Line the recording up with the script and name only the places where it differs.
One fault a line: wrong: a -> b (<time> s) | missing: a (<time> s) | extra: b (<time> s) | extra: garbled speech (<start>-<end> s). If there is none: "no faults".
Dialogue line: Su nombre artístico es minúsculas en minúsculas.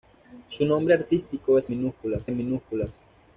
no faults